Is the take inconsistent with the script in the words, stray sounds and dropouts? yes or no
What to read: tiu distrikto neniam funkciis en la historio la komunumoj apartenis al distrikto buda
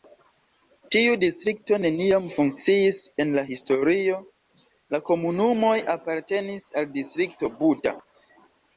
no